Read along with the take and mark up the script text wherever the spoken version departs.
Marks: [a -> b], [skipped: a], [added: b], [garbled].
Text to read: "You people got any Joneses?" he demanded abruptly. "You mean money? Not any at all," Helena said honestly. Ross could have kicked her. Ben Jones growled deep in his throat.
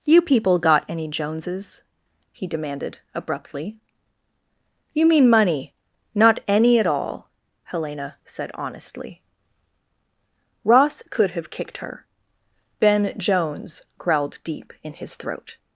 "You people got any Joneses?" he demanded abruptly. "You mean money? Not any at all," Helena said honestly. Ross could have kicked her. Ben Jones growled deep in his throat.